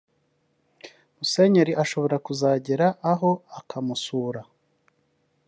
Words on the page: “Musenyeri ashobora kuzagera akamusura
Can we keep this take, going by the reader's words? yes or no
no